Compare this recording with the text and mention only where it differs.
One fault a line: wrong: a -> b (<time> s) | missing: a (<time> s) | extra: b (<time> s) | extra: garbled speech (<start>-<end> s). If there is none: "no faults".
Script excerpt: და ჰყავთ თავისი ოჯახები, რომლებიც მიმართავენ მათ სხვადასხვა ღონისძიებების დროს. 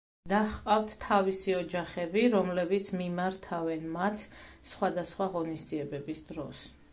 no faults